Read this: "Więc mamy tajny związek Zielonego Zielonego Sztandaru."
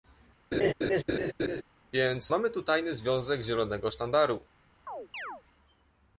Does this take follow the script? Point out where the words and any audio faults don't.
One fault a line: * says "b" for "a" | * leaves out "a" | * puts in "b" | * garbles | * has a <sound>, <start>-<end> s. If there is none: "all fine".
* has a laugh, 0.5-1.6 s
* puts in "tu"
* leaves out "Zielonego"
* has a chirp, 4.9-5.4 s